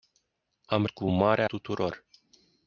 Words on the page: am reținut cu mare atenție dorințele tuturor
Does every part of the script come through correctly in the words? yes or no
no